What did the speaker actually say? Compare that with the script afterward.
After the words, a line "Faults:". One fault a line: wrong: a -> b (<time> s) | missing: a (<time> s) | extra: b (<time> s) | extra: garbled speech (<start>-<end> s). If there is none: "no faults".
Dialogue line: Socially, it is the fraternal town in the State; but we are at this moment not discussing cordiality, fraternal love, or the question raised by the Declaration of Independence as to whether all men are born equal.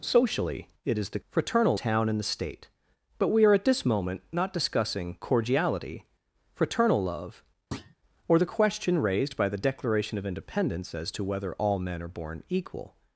Socially, it is the fraternal town in the State; but we are at this moment not discussing cordiality, fraternal love, or the question raised by the Declaration of Independence as to whether all men are born equal.
Faults:
no faults